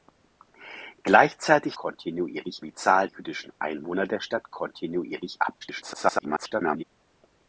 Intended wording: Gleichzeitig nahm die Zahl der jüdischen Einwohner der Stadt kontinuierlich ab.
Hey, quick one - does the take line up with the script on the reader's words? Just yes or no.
no